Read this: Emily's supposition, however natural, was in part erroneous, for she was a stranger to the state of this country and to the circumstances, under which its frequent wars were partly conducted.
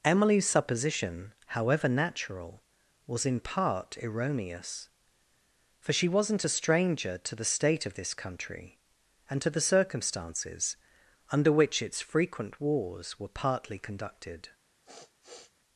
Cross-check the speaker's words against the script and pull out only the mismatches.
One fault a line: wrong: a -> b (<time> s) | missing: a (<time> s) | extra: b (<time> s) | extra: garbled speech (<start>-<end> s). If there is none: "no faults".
wrong: was -> wasn't (6.1 s)